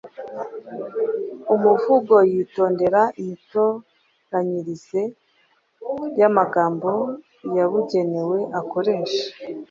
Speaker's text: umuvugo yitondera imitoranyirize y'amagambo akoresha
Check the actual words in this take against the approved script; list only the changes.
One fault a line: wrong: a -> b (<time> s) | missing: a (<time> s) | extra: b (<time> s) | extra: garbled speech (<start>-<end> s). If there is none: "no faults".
extra: yabugenewe (7.6 s)